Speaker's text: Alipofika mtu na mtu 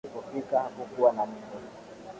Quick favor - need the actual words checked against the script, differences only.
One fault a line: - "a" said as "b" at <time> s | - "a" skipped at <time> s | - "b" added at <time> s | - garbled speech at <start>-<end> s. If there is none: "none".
- "mtu" said as "hakukuwa" at 0.6 s